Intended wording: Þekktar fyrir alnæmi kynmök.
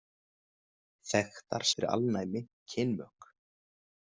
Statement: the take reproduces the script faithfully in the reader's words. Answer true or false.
true